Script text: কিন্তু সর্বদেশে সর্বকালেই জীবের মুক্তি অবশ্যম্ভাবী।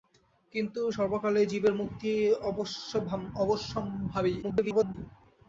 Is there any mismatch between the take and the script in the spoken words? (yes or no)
yes